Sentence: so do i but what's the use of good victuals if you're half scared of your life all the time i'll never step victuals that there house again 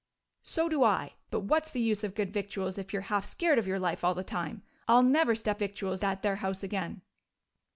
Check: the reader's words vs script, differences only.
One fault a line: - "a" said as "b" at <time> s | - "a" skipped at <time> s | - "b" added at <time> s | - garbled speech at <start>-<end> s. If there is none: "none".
none